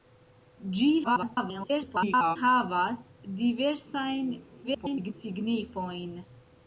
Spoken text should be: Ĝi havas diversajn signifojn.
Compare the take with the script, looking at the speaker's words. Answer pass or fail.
fail